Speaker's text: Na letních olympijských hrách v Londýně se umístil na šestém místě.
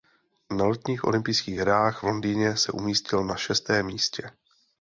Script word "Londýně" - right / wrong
right